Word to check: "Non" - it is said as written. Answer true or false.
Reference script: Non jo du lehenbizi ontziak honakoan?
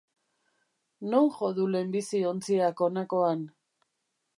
true